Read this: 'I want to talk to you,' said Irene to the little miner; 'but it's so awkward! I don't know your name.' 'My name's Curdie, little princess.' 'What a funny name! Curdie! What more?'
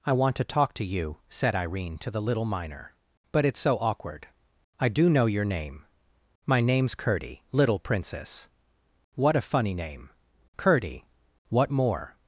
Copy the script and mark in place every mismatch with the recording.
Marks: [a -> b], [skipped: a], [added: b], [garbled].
'I want to talk to you,' said Irene to the little miner; 'but it's so awkward! I [don't -> do] know your name.' 'My name's Curdie, little princess.' 'What a funny name! Curdie! What more?'